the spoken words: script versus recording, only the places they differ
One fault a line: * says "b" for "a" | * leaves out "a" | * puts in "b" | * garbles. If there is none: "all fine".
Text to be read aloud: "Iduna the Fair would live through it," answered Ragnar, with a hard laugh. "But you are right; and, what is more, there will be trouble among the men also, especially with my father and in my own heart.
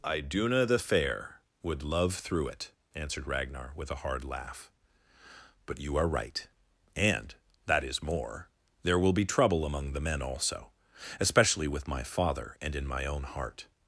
* says "love" for "live"
* says "that" for "what"